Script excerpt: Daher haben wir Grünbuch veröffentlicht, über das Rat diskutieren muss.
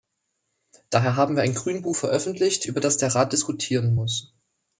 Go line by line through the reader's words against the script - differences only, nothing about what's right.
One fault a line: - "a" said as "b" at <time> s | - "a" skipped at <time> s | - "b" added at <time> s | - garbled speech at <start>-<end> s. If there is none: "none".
- "ein" added at 1.4 s
- "der" added at 3.0 s